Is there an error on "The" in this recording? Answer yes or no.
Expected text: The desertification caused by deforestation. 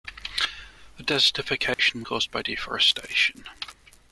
no